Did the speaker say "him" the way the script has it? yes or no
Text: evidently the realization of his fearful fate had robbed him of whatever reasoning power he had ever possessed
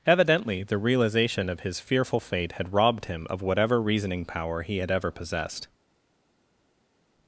yes